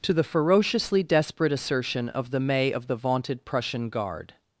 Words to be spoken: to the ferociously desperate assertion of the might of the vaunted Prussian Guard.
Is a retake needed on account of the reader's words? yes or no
yes